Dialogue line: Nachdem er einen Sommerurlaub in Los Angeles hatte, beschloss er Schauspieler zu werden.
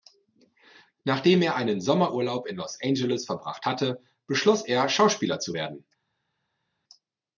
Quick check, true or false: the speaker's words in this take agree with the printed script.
false